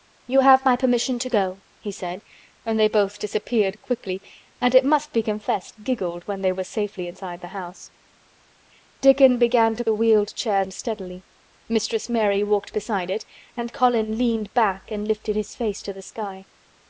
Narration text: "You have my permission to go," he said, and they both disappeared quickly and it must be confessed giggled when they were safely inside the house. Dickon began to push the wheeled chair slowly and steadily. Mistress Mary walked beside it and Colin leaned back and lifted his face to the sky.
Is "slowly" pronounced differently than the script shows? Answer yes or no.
yes